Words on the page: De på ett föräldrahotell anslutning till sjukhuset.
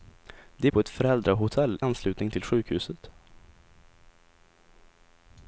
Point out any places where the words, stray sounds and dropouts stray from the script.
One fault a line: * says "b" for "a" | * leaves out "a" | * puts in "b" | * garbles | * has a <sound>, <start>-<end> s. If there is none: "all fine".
all fine